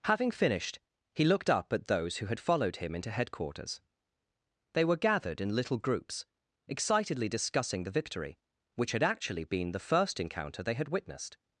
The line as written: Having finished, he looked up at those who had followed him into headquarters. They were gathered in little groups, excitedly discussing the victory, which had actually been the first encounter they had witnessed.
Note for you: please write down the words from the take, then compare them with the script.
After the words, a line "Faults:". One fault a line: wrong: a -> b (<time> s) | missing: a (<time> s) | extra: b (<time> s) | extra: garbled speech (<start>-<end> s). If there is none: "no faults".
Having finished, he looked up at those who had followed him into headquarters. They were gathered in little groups, excitedly discussing the victory, which had actually been the first encounter they had witnessed.
Faults:
no faults